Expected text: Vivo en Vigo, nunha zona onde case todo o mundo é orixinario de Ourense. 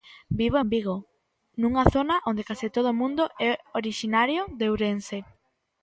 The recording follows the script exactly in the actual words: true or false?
true